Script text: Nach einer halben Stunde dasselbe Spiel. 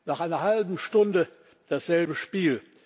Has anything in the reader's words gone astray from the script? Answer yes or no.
no